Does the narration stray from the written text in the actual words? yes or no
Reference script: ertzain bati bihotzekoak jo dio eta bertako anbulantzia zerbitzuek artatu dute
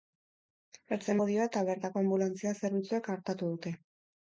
yes